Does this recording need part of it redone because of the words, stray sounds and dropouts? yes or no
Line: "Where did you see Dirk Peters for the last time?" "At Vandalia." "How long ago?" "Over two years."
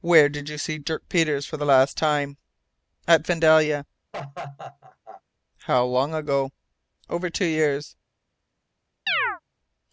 yes